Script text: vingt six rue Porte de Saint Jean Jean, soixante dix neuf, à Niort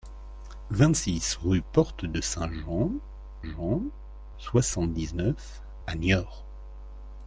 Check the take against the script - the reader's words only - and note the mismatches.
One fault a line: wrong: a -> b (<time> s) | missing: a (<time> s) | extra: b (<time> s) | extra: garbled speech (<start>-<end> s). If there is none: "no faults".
no faults